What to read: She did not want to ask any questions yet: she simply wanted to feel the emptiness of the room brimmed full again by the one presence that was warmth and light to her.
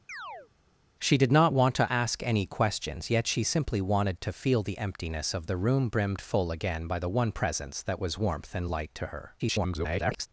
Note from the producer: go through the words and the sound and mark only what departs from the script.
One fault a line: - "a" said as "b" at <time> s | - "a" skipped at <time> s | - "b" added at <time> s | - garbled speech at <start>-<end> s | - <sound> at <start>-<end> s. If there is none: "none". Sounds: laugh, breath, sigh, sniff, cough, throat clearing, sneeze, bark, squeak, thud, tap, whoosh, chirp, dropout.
- chirp at 0.1-0.5 s
- garbled speech at 9.4-10.3 s